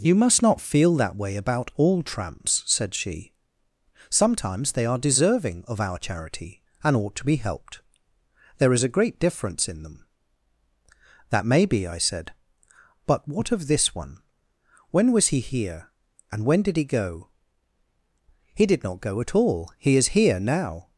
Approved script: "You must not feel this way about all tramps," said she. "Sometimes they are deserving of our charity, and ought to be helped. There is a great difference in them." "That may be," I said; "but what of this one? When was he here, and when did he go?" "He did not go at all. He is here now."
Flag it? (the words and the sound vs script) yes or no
yes